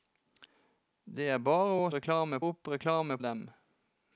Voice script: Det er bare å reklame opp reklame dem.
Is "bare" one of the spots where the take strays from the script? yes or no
no